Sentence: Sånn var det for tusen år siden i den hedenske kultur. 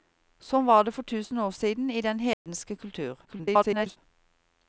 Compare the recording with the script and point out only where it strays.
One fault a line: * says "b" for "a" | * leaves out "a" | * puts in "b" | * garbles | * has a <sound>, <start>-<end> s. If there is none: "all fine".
* has a dropout, 2.3-2.5 s
* garbles